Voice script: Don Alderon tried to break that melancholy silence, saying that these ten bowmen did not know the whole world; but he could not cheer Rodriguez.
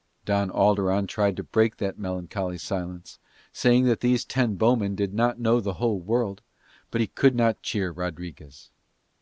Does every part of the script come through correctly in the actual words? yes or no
yes